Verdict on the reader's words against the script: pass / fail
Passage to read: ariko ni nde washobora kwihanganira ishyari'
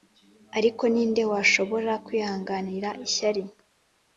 pass